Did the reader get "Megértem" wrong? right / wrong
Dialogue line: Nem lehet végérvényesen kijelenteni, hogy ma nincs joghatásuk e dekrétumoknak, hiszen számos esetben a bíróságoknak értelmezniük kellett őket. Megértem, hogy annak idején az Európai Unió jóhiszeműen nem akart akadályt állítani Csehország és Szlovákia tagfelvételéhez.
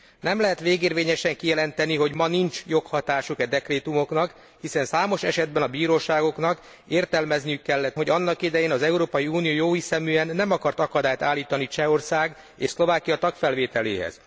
wrong